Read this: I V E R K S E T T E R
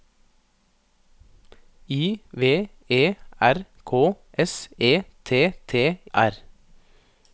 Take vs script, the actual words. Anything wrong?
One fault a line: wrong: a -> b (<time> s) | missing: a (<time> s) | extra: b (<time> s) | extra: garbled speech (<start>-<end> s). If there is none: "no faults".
missing: E (6.0 s)